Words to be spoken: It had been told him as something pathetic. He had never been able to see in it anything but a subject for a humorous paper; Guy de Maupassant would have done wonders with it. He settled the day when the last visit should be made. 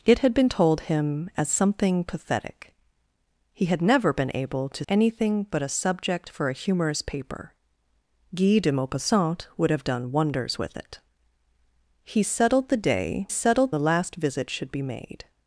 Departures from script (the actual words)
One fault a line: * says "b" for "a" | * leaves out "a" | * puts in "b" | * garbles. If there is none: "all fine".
* leaves out "see in it"
* says "settled" for "when"